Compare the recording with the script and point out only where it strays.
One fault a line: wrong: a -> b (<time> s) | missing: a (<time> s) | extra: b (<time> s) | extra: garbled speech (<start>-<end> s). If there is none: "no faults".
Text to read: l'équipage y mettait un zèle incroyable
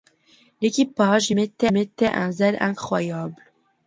extra: mettait (1.7 s)